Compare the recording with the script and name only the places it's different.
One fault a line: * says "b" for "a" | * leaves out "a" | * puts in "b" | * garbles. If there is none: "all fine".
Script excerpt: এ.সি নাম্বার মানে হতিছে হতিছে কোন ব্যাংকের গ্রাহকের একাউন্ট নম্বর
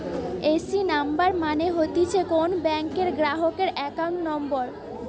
* leaves out "হতিছে"